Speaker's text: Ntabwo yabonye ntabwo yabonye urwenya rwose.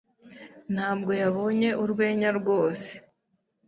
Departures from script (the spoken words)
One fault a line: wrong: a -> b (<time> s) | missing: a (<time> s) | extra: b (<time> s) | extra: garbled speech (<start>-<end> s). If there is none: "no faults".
missing: ntabwo yabonye (1.7 s)